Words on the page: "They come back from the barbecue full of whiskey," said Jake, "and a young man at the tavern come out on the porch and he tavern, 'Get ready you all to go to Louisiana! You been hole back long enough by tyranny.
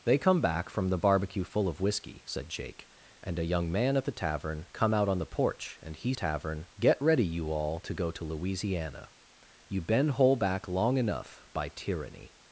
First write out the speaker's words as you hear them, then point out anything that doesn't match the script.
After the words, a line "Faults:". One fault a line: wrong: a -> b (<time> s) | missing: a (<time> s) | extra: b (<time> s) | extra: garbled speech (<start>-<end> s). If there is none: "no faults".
"They come back from the barbecue full of whiskey," said Jake, "and a young man at the tavern come out on the porch and he tavern, 'Get ready you all to go to Louisiana! You been hole back long enough by tyranny.
Faults:
no faults